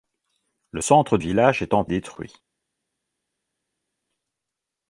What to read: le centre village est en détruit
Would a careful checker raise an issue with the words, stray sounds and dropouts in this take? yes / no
no